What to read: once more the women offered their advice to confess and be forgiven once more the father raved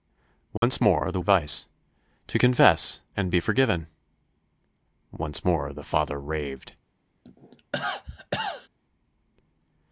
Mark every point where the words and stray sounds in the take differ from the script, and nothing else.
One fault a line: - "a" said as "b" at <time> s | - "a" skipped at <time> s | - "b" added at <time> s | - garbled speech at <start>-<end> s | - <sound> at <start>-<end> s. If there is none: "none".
- dropout at 0.6-0.6 s
- "women offered their" skipped at 1.2 s
- cough at 7.2-8.7 s